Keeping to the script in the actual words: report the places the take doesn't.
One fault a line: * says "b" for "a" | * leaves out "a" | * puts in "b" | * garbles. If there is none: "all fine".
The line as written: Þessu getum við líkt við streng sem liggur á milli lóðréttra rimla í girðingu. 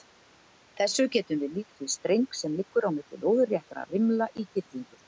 all fine